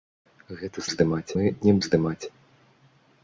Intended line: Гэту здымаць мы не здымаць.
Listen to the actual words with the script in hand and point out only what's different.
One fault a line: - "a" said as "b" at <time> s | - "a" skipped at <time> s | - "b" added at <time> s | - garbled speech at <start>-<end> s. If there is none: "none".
none